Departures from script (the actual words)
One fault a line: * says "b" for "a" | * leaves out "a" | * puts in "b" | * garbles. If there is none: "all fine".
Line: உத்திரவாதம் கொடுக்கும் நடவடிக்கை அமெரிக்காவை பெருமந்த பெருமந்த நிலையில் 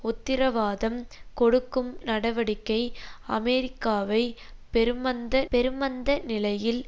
all fine